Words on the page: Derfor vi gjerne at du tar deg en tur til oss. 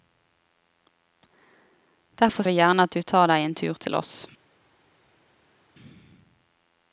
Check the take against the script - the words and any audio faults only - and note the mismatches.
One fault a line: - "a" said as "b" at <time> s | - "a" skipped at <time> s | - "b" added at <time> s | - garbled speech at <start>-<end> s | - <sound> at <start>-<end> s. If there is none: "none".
none